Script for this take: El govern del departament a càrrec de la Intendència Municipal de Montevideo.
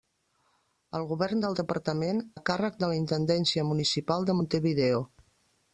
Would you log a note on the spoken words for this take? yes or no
no